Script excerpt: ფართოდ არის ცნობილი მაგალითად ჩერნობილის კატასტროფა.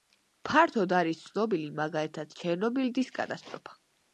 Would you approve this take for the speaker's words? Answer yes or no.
yes